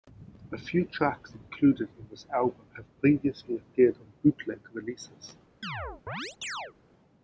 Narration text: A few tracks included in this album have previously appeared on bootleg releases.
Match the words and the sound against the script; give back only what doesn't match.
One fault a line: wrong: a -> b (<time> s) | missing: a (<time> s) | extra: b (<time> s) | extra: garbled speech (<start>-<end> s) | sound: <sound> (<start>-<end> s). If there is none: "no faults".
sound: chirp (5.6-6.7 s)